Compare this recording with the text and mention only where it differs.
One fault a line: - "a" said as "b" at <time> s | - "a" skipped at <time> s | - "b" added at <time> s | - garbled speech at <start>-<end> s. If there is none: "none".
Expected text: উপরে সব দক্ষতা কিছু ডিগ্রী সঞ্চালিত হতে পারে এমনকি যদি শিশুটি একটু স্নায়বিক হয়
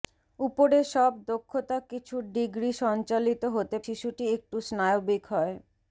- "পারে এমনকি যদি" skipped at 3.8 s